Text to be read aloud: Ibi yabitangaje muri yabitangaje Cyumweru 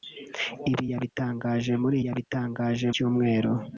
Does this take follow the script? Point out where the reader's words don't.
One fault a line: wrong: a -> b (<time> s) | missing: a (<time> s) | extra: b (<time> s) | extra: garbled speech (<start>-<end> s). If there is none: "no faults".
no faults